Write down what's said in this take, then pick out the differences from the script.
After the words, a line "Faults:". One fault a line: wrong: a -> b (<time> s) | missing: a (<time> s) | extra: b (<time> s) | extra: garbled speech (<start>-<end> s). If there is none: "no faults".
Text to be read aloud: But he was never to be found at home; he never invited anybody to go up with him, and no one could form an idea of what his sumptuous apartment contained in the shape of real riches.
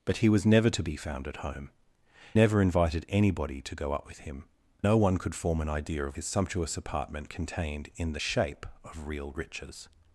But he was never to be found at home; never invited anybody to go up with him, no one could form an idea of his sumptuous apartment contained in the shape of real riches.
Faults:
missing: he (1.7 s)
missing: and (4.4 s)
missing: what (6.2 s)